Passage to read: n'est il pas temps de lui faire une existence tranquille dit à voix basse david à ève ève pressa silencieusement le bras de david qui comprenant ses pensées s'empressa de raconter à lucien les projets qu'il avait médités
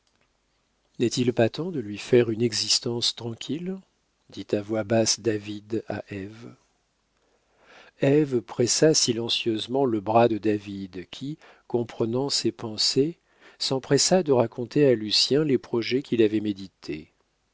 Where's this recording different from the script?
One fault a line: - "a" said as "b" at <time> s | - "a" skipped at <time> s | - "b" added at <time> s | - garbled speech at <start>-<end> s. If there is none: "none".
none